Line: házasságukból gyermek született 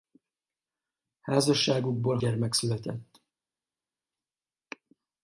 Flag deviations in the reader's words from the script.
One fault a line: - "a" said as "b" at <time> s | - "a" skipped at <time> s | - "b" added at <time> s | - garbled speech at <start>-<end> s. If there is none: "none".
none